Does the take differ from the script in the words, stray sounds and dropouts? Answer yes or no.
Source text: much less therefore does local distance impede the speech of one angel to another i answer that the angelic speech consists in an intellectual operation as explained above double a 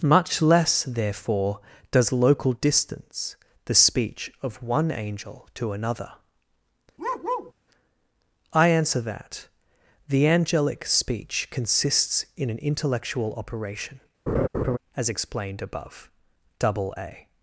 yes